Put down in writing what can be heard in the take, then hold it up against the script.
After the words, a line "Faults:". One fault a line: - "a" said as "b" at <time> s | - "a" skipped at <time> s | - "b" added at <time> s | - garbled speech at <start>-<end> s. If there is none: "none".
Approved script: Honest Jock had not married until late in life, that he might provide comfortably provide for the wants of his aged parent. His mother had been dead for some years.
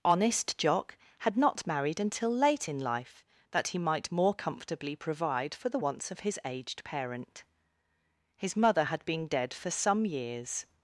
Honest Jock had not married until late in life, that he might more comfortably provide for the wants of his aged parent. His mother had been dead for some years.
Faults:
- "provide" said as "more" at 4.1 s